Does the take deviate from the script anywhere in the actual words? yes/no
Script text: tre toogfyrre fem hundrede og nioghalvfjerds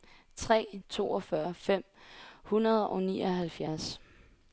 no